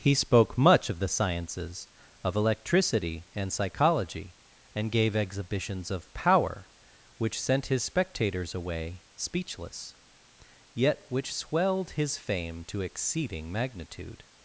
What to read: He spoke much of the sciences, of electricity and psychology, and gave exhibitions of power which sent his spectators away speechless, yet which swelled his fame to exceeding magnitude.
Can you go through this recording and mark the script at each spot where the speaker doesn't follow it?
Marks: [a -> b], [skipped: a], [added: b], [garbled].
He spoke much of the sciences, of electricity and psychology, and gave exhibitions of power which sent his spectators away speechless, yet which swelled his fame to exceeding magnitude.